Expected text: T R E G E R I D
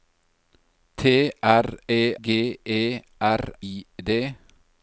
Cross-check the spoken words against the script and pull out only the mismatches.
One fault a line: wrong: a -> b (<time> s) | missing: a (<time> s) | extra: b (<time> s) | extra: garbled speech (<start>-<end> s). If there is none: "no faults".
no faults